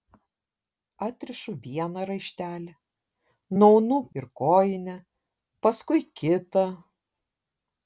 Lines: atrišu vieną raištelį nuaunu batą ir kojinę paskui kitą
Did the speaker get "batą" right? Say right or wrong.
wrong